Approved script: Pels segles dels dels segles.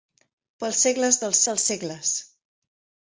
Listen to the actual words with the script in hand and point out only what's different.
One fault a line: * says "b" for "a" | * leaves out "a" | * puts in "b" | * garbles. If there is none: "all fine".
all fine